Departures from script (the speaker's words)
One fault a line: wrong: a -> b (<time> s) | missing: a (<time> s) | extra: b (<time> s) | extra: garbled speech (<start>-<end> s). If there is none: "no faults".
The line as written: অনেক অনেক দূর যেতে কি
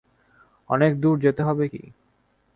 missing: অনেক (0.9 s)
extra: হবে (1.4 s)